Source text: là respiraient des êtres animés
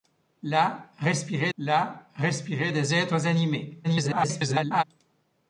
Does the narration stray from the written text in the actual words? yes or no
yes